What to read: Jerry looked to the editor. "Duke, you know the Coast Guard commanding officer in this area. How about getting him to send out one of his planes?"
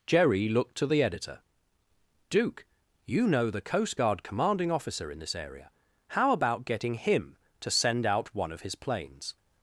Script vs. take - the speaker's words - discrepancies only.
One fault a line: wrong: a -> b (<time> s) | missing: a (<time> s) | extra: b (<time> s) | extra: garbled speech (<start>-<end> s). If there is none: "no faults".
no faults